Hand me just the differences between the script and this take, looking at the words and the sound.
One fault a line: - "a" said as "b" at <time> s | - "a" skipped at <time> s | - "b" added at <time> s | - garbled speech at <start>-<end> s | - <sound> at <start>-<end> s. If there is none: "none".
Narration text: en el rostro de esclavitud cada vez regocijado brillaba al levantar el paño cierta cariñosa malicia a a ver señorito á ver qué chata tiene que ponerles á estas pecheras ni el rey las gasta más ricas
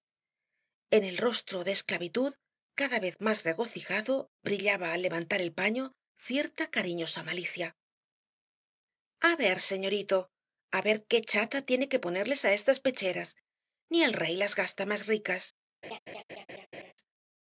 - "más" added at 3.2 s
- "a" skipped at 9.3 s
- laugh at 15.8-16.9 s